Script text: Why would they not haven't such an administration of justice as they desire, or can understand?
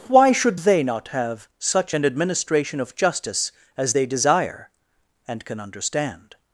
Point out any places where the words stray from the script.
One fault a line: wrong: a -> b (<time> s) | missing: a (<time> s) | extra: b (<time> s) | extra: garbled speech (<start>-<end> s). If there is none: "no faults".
wrong: would -> should (0.3 s)
wrong: haven't -> have (1.1 s)
wrong: or -> and (5.3 s)